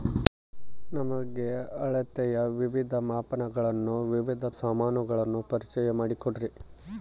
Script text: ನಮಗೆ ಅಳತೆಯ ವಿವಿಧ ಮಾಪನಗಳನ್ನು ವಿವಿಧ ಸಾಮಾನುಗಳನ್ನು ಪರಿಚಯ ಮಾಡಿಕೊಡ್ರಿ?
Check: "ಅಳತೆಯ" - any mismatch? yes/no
no